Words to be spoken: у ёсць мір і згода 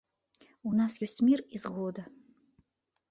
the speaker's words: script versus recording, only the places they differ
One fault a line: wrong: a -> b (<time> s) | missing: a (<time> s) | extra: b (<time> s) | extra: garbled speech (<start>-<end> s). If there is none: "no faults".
extra: нас (0.8 s)